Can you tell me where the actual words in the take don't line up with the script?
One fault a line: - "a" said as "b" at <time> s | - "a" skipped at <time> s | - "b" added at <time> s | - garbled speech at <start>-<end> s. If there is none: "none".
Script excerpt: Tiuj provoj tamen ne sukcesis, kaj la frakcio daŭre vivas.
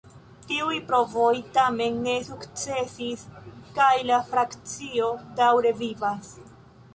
none